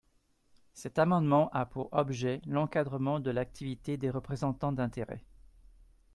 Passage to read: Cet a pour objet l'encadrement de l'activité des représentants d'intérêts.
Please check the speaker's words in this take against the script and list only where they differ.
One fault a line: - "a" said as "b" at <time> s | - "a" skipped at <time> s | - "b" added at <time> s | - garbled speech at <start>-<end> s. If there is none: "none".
- "amendement" added at 1.0 s